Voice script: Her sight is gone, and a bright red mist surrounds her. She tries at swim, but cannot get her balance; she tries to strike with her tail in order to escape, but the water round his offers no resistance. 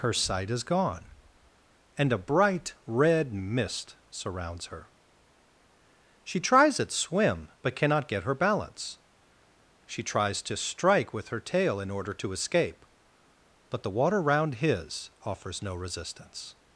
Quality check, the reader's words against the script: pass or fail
pass